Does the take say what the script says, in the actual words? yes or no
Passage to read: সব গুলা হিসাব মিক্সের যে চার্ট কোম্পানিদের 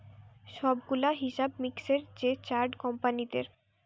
yes